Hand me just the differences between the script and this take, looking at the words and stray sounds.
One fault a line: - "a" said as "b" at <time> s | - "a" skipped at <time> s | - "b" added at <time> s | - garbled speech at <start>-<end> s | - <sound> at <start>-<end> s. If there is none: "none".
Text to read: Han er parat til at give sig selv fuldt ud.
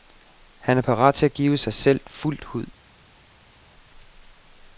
none